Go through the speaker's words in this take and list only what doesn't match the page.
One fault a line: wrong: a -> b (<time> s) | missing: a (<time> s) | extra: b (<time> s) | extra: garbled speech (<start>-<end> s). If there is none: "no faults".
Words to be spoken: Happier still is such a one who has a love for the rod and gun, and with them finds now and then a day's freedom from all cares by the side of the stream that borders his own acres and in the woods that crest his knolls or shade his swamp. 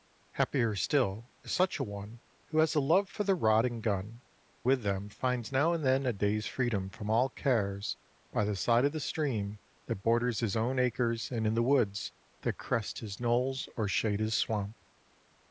missing: and (4.2 s)